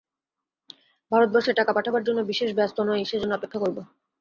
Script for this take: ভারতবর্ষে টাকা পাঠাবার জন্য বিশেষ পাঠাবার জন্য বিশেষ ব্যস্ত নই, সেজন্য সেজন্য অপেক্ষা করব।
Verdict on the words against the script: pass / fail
fail